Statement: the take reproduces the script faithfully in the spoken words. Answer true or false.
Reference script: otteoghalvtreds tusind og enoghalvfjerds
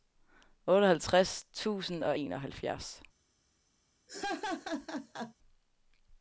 true